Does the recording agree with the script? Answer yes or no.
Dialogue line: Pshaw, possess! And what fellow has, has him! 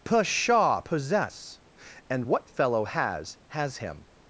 yes